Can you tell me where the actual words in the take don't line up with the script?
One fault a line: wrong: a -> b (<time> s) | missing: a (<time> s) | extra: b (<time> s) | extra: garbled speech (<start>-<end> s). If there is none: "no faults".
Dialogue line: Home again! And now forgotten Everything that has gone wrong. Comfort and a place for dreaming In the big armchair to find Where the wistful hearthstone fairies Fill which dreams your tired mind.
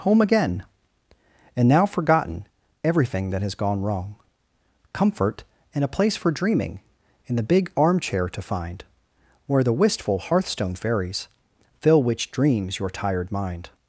no faults